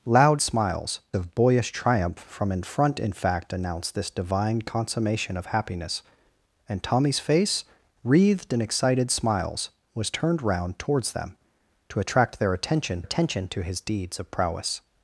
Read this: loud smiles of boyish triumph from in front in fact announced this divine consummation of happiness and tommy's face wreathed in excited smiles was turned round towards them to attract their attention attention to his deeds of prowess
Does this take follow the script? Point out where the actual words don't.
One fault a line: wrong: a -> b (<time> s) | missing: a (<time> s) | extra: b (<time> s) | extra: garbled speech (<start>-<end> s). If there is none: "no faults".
no faults